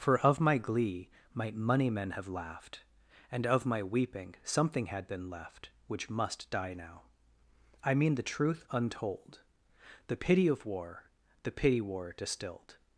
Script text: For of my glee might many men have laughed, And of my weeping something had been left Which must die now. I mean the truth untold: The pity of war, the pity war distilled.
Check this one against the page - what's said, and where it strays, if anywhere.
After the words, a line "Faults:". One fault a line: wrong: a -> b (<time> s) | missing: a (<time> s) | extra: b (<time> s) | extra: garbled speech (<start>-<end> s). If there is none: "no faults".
For of my glee might money men have laughed, And of my weeping something had been left Which must die now. I mean the truth untold: The pity of war, the pity war distilled.
Faults:
wrong: many -> money (1.5 s)